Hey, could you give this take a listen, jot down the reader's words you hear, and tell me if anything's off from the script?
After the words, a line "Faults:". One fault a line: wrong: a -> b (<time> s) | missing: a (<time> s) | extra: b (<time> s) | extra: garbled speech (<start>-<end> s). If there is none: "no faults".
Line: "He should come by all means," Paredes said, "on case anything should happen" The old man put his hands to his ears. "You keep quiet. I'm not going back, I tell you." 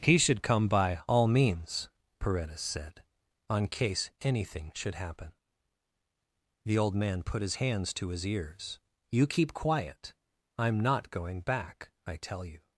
"He should come by all means," Paredes said, "on case anything should happen" The old man put his hands to his ears. "You keep quiet. I'm not going back, I tell you."
Faults:
no faults